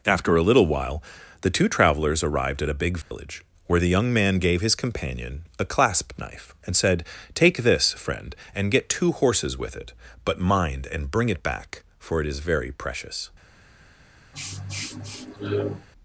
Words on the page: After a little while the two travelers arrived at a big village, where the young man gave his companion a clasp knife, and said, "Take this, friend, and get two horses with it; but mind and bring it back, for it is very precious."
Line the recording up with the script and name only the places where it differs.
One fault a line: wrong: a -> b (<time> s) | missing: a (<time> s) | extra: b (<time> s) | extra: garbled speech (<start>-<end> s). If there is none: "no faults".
no faults